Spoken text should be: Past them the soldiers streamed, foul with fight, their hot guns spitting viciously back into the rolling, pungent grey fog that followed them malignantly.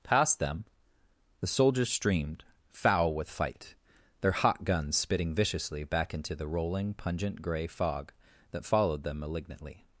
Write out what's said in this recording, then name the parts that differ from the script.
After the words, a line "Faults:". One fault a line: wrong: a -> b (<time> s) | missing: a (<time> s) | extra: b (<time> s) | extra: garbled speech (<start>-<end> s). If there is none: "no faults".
Past them the soldiers streamed, foul with fight, their hot guns spitting viciously back into the rolling, pungent grey fog that followed them malignantly.
Faults:
no faults